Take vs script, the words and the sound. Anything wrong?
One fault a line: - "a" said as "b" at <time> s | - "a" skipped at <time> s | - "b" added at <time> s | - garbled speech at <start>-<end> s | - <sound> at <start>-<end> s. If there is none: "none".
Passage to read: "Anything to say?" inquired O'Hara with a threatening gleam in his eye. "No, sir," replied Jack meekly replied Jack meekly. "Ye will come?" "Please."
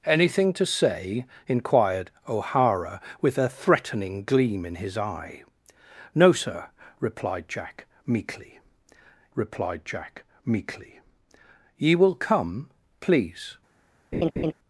- laugh at 14.1-14.5 s